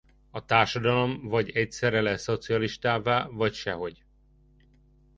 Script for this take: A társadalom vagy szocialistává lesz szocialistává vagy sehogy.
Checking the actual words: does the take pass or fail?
fail